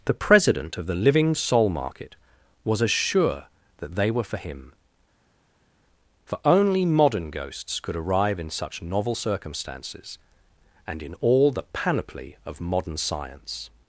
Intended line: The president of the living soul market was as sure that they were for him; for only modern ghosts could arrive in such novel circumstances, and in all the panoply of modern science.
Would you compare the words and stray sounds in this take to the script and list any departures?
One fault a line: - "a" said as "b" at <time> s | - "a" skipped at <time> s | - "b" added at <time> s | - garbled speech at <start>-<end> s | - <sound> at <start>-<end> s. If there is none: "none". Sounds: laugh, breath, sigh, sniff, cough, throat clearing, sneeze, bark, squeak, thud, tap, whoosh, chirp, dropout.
none